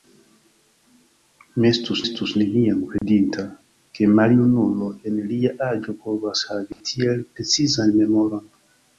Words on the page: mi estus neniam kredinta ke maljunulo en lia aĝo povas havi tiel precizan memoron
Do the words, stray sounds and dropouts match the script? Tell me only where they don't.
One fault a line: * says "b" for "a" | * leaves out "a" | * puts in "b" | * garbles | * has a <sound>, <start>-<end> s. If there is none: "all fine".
* puts in "estus"
* has a dropout, 3.0-3.0 s
* has a dropout, 6.7-6.8 s